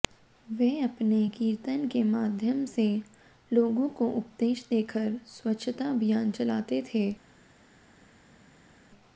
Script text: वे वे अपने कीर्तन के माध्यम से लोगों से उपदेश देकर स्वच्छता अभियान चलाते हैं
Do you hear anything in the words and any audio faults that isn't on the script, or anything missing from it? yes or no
yes